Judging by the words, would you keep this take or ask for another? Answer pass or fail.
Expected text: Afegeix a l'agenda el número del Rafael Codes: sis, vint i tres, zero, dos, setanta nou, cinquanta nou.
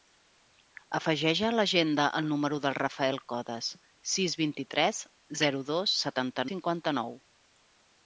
fail